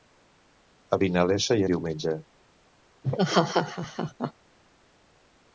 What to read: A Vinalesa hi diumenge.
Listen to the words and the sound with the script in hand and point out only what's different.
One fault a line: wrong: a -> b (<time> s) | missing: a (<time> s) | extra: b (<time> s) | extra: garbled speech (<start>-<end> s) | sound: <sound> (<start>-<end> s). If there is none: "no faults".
sound: laugh (3.0-4.3 s)